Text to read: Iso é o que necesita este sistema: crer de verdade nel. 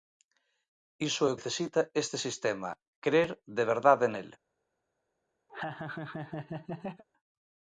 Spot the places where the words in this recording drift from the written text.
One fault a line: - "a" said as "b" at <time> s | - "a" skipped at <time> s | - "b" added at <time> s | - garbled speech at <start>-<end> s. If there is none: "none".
- "que" skipped at 1.4 s